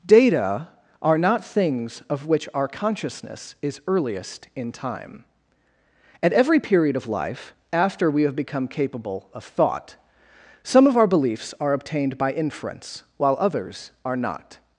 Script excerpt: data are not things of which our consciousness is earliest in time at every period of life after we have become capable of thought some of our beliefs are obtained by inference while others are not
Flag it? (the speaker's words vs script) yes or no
no